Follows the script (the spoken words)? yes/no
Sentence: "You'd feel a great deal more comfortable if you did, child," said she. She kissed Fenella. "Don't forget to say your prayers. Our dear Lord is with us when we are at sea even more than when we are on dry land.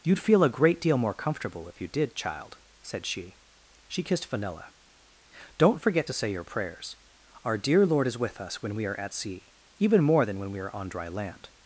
yes